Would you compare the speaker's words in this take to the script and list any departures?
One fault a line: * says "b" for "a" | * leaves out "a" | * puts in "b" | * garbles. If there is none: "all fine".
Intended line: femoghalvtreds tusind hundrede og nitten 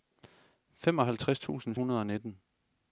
all fine